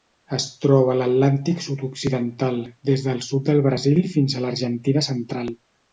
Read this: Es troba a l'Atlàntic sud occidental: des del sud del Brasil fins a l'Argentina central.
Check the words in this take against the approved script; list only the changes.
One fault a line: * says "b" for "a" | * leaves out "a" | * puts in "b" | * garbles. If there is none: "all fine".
all fine